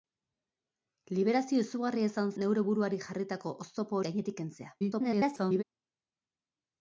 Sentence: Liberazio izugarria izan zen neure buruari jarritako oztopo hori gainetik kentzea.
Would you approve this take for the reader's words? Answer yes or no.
no